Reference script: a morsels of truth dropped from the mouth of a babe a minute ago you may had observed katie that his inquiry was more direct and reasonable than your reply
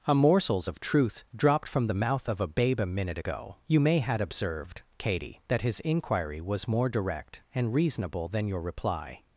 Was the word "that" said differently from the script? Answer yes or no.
no